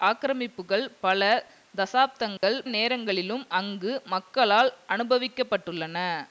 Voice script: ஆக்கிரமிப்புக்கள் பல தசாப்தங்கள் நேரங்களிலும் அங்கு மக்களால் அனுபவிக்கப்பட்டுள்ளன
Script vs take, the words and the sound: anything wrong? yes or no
yes